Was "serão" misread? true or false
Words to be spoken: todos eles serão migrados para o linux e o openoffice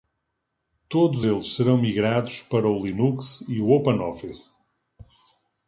false